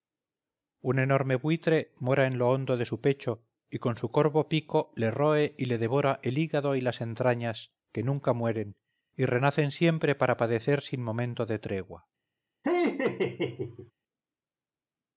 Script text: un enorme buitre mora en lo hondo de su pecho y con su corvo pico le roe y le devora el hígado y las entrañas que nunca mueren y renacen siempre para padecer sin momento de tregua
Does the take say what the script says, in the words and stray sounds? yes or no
no